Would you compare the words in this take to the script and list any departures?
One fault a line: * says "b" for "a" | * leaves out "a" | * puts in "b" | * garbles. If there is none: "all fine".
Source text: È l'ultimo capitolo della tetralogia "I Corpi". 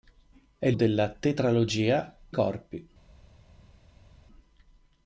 * leaves out "l'ultimo capitolo"
* leaves out "I"